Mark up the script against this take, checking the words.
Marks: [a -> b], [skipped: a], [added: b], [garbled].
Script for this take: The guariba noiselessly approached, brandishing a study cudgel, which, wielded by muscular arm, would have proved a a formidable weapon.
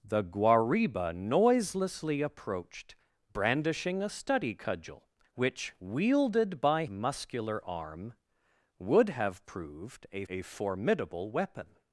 The guariba noiselessly approached, brandishing a study cudgel, which, wielded by muscular arm, would have proved a a formidable weapon.